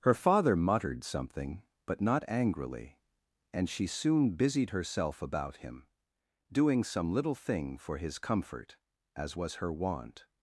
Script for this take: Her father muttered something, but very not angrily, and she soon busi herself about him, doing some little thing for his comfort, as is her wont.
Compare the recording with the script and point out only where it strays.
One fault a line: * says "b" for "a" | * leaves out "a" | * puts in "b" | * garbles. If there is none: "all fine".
* leaves out "very"
* says "busied" for "busi"
* says "was" for "is"